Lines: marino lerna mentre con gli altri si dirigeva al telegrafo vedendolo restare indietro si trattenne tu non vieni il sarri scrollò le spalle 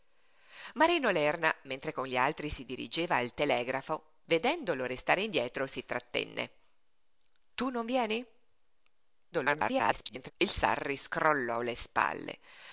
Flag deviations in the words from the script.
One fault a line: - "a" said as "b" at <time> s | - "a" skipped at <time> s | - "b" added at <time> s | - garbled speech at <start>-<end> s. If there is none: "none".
- garbled speech at 9.3-10.3 s